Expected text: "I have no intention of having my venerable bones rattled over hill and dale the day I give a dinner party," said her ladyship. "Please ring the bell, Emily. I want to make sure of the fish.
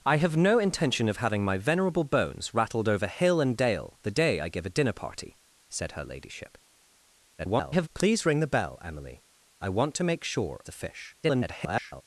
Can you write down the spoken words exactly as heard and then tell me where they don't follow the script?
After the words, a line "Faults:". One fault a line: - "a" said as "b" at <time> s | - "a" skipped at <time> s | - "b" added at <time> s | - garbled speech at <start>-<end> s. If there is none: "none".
"I have no intention of having my venerable bones rattled over hill and dale the day I give a dinner party," said her ladyship. [garbled] "Please ring the bell, Emily. I want to make sure the fish. [garbled]
Faults:
- garbled speech at 7.4-7.9 s
- "of" skipped at 10.6 s
- garbled speech at 11.2-12.0 s